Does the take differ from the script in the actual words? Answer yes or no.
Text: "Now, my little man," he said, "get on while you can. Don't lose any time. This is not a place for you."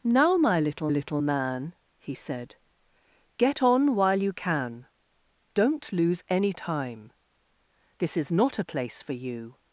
yes